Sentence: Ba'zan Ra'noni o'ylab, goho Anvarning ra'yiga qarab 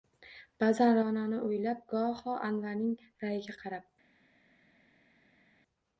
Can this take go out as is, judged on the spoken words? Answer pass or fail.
pass